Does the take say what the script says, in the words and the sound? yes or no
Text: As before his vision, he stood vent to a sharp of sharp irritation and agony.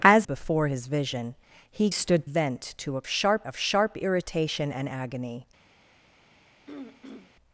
no